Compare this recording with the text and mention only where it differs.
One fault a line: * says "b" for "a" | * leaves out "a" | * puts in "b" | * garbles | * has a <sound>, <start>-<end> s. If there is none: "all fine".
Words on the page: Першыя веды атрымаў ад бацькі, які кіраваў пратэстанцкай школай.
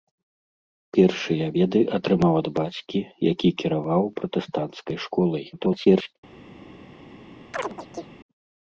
* garbles
* has a chirp, 7.5-8.1 s